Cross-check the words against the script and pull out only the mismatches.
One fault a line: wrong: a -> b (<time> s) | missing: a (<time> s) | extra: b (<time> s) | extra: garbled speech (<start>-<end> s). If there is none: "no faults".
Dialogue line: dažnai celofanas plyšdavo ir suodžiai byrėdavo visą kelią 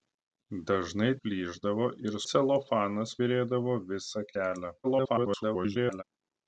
missing: celofanas (1.1 s)
wrong: suodžiai -> celofanas (2.3 s)
extra: garbled speech (4.8-6.0 s)